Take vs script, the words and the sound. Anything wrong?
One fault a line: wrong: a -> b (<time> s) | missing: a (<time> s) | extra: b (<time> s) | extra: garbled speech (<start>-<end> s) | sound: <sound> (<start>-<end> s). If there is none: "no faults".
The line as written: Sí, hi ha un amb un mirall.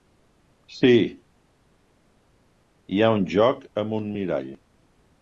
extra: joc (3.3 s)